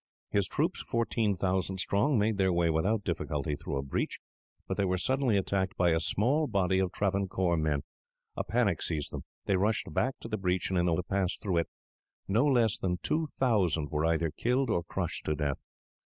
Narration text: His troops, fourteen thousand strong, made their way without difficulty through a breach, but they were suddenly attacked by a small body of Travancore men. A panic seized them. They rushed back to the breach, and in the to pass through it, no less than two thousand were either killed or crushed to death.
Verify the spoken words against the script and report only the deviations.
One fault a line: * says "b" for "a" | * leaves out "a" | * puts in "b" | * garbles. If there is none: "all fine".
all fine